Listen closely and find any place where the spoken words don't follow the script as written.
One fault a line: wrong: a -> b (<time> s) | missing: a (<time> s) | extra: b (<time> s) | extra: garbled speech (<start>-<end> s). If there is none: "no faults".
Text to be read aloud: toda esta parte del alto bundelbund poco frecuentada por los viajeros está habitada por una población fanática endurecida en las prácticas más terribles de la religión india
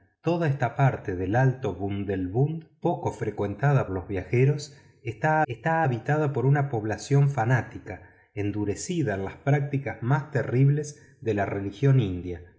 missing: por (3.9 s)
extra: está (5.5 s)